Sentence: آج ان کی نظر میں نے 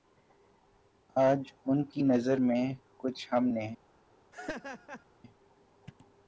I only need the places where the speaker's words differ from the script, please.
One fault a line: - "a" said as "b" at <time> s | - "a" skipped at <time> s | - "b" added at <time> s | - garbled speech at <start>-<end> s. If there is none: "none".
- "کچھ ہم" added at 3.0 s